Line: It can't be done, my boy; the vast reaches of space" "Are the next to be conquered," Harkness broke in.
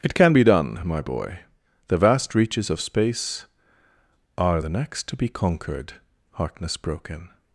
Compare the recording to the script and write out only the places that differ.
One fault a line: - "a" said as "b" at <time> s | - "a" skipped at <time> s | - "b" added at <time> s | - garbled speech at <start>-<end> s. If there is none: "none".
- "can't" said as "can" at 0.1 s